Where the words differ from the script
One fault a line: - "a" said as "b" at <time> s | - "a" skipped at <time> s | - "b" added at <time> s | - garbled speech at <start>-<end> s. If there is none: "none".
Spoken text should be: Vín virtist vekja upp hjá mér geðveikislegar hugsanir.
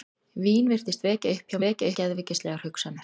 - "mér" said as "vekja" at 1.7 s